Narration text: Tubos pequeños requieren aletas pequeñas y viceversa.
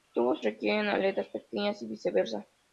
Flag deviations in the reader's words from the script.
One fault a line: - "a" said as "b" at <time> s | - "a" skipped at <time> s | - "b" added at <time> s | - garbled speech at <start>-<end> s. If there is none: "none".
- "pequeños" skipped at 0.4 s